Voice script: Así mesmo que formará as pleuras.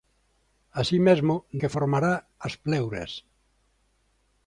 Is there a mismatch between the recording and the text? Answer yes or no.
no